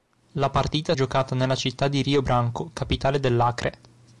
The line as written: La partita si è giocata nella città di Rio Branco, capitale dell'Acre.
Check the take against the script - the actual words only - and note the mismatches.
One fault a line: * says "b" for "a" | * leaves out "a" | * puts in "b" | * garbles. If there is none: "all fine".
* leaves out "si"